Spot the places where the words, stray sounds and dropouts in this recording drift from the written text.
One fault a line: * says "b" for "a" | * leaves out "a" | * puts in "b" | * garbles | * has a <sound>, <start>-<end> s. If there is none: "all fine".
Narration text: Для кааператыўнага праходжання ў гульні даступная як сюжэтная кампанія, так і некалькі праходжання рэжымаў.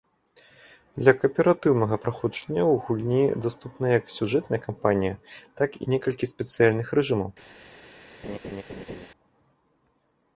* says "спецыяльных" for "праходжання"
* has a laugh, 8.2-9.1 s